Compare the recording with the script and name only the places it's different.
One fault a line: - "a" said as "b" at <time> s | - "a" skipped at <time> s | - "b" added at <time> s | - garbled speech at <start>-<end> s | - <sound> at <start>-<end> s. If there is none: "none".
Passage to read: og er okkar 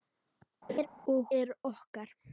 - laugh at 0.7-0.9 s